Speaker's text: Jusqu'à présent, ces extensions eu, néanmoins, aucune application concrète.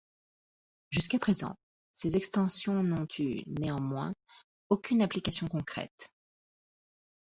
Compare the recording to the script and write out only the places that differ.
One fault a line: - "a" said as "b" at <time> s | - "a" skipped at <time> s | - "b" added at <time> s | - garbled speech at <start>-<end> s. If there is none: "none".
- "n'ont" added at 2.8 s